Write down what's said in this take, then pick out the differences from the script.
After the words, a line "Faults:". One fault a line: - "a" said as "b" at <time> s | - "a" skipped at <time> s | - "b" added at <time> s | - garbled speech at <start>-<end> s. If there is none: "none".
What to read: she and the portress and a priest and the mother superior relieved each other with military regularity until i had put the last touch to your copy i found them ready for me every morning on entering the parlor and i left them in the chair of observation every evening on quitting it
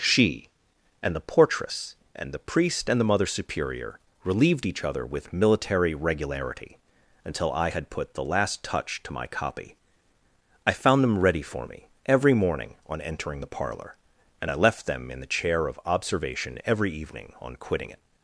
she and the portress and the priest and the mother superior relieved each other with military regularity until i had put the last touch to my copy i found them ready for me every morning on entering the parlor and i left them in the chair of observation every evening on quitting it
Faults:
- "a" said as "the" at 2.3 s
- "your" said as "my" at 9.1 s